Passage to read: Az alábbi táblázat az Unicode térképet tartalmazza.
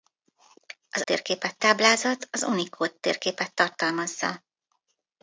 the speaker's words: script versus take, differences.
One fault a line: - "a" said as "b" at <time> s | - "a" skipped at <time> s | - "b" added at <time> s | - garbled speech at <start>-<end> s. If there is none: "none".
- "alábbi" said as "térképet" at 1.0 s